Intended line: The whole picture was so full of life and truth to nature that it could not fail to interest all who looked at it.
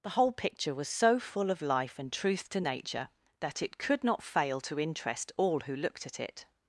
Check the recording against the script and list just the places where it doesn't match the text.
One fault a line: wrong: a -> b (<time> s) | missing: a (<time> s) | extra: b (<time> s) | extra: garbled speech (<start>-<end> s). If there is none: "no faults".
no faults